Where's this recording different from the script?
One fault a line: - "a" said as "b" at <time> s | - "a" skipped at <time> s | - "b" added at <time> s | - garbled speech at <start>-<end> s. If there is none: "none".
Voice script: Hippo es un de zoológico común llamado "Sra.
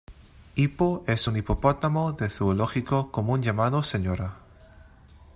- "hipopótamo" added at 1.3 s